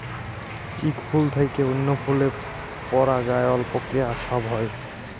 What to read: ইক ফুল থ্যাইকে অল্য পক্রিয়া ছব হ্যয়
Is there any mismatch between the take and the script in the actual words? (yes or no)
yes